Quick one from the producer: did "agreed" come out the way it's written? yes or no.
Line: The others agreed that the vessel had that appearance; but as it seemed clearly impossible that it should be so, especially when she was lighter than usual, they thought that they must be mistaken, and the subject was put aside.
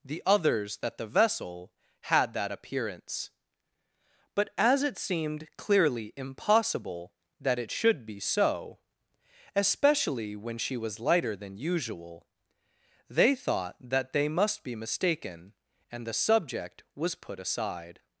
no